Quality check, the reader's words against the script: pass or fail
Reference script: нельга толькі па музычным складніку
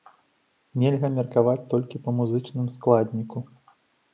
fail